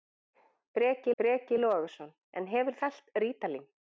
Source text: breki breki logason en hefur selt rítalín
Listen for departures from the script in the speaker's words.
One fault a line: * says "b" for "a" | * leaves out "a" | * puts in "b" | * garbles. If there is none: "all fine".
all fine